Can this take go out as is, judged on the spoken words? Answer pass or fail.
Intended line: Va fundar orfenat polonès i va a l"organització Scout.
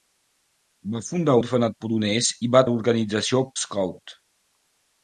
pass